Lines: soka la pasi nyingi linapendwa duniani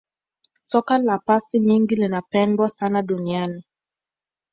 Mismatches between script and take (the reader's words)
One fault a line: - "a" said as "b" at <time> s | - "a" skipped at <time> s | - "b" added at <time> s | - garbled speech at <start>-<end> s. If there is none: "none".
- "sana" added at 2.7 s